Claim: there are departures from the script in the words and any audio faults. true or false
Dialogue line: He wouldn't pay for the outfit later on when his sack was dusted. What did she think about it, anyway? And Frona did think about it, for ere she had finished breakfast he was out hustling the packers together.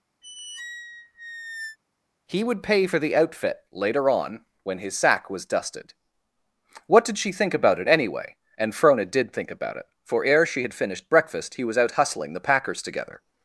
true